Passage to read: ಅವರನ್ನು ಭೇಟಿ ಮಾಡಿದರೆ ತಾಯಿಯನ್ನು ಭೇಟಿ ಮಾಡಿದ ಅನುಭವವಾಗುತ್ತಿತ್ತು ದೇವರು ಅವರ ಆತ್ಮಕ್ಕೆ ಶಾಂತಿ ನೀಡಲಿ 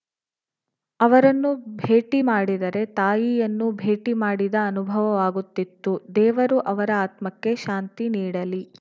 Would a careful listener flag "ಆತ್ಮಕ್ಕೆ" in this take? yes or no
no